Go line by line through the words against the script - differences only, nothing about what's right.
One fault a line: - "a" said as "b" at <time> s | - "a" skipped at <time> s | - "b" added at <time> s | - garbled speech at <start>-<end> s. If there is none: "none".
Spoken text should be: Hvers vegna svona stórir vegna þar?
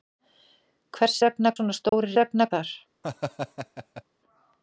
none